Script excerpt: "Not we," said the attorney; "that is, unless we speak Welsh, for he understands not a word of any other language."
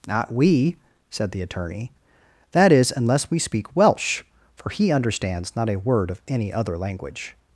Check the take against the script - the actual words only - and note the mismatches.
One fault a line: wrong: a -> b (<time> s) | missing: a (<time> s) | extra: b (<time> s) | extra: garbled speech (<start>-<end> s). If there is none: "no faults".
no faults